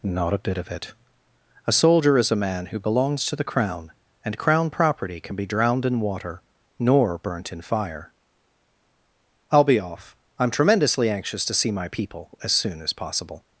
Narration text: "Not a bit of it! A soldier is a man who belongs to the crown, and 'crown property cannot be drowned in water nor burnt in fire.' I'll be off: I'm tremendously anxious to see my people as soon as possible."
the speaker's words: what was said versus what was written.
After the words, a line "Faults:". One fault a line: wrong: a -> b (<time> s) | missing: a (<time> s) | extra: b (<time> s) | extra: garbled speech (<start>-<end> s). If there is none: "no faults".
"Not a bit of it! A soldier is a man who belongs to the crown, and 'crown property can be drowned in water nor burnt in fire.' I'll be off: I'm tremendously anxious to see my people as soon as possible."
Faults:
wrong: cannot -> can (5.2 s)